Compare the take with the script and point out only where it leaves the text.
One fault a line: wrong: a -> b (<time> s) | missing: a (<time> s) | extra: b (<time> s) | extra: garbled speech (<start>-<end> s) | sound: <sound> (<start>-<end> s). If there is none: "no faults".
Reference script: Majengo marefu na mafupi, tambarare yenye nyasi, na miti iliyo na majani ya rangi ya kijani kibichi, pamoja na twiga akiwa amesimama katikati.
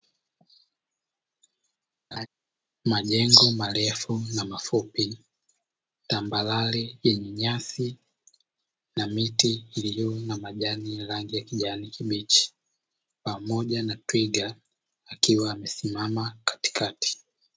sound: laugh (2.1-2.3 s)